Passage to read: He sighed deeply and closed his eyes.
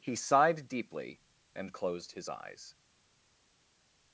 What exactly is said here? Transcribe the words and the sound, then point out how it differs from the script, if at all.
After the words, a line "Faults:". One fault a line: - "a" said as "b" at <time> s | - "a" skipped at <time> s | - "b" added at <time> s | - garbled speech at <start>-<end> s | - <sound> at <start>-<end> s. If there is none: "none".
He sighed deeply and closed his eyes.
Faults:
none